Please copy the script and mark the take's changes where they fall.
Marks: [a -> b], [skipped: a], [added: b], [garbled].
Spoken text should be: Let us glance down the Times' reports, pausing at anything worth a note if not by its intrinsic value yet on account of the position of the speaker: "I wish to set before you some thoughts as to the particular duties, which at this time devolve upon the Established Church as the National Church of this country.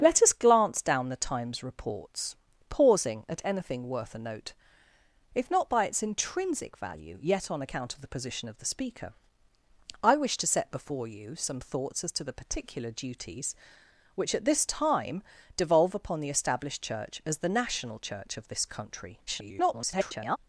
Let us glance down the Times' reports, pausing at anything worth a note if not by its intrinsic value yet on account of the position of the speaker: "I wish to set before you some thoughts as to the particular duties, which at this time devolve upon the Established Church as the National Church of this country. [garbled]